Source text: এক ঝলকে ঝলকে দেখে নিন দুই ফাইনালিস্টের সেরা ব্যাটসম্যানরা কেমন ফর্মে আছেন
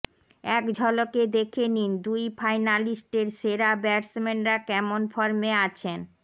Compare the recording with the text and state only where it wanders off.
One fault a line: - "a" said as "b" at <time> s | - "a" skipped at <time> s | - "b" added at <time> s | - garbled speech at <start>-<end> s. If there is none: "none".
- "ঝলকে" skipped at 1.2 s